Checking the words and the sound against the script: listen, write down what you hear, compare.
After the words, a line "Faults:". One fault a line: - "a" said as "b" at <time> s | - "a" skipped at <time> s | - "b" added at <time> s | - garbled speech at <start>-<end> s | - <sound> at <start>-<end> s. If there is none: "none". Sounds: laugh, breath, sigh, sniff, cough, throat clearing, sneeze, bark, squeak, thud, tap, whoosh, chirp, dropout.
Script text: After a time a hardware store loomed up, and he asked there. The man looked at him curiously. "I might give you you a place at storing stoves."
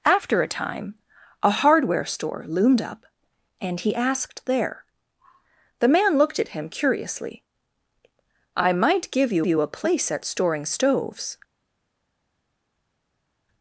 After a time a hardware store loomed up, and he asked there. The man looked at him curiously. "I might give you you a place at storing stoves."
Faults:
none